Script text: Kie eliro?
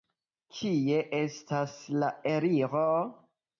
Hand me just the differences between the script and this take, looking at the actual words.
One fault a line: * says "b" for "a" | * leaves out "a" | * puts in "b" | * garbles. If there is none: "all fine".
* puts in "estas la"